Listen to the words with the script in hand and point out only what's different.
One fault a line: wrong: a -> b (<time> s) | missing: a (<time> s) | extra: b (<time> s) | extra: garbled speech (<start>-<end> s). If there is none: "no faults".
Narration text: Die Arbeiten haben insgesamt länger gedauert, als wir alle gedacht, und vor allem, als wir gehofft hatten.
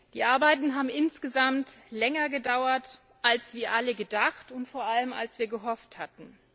no faults